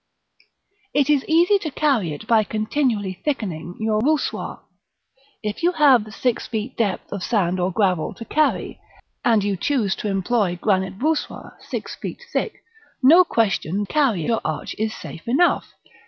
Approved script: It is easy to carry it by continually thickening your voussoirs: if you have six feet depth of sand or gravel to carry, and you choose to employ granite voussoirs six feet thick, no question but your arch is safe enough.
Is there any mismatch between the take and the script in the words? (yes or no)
yes